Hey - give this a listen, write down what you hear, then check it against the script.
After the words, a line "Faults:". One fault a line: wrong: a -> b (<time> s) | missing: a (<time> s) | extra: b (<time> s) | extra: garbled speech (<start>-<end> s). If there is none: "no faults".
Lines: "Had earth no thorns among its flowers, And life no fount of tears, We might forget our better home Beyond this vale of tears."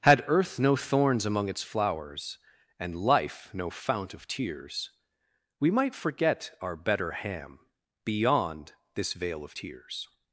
"Had earth no thorns among its flowers, And life no fount of tears, We might forget our better ham Beyond this vale of tears."
Faults:
wrong: home -> ham (7.1 s)